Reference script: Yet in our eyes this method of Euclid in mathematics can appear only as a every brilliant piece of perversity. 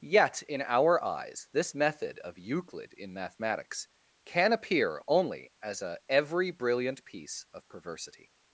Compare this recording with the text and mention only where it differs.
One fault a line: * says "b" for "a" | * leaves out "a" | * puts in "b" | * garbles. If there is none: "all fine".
all fine